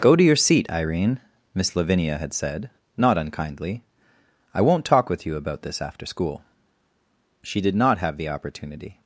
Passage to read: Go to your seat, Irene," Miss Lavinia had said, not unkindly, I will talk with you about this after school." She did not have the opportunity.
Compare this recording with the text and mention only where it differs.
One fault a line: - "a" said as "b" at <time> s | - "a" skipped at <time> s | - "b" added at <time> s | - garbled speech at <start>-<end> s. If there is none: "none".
- "will" said as "won't" at 4.6 s